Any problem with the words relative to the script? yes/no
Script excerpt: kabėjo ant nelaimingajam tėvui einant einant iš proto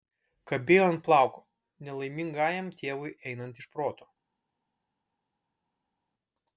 yes